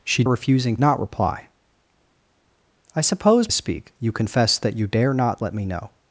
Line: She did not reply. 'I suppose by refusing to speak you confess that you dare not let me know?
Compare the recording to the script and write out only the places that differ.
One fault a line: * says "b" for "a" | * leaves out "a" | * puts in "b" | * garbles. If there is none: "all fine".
* says "refusing" for "did"
* leaves out "by refusing to"